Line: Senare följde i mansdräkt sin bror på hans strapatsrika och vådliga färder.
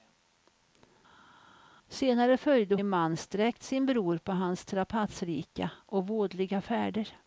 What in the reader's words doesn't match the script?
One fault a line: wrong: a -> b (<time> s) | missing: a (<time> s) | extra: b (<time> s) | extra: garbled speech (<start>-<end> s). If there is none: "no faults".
no faults